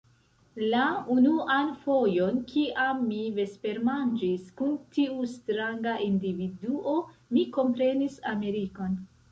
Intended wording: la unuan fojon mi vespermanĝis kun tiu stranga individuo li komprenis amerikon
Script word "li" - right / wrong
wrong